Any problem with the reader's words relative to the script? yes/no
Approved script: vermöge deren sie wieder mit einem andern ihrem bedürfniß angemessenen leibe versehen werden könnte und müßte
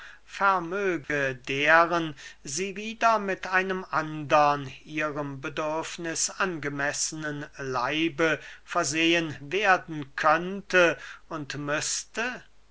no